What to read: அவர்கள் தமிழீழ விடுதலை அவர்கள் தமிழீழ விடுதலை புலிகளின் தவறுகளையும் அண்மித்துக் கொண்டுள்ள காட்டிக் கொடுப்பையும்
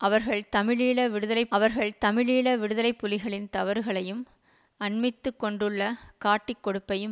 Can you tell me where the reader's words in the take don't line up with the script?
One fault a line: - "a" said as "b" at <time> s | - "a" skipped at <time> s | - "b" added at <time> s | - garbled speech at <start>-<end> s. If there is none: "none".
none